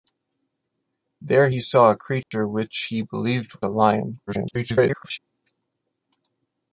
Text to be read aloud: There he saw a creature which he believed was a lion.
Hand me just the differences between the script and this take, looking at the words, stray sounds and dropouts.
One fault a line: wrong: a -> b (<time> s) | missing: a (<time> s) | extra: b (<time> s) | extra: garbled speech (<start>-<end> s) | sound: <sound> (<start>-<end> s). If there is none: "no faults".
sound: dropout (2.2-2.3 s)
missing: was (3.6 s)
extra: garbled speech (4.3-5.2 s)